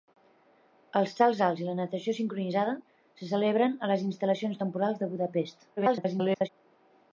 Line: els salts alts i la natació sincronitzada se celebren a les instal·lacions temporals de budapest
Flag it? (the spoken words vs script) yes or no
yes